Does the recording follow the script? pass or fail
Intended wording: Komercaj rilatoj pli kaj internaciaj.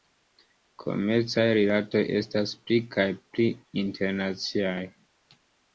fail